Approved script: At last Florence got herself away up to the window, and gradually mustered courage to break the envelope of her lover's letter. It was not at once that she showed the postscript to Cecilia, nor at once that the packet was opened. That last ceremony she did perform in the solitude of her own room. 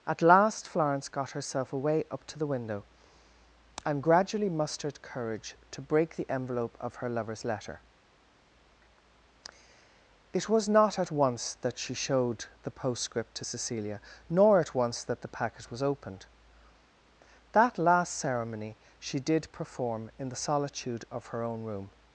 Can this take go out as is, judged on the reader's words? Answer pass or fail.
pass